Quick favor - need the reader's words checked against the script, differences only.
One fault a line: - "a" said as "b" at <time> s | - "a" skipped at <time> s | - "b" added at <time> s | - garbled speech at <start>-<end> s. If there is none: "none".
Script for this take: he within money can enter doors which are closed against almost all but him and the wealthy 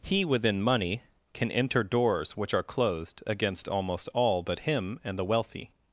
none